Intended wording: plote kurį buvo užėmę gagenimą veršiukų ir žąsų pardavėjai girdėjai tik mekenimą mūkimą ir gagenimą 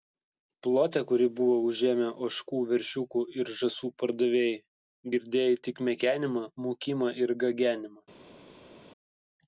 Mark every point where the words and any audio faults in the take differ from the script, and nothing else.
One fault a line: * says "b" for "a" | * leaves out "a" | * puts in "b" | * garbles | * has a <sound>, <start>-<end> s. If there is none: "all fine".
* says "ožkų" for "gagenimą"